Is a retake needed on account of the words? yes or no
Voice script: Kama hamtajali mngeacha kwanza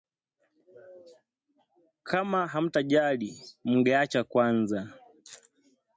no